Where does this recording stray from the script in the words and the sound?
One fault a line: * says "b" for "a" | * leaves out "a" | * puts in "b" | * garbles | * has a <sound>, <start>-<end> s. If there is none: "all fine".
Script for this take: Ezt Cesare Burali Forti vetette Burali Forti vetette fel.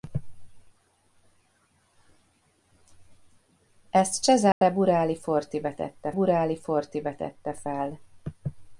* has a dropout, 4.5-4.6 s